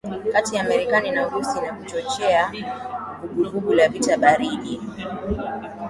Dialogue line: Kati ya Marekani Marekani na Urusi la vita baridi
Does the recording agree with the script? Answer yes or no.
no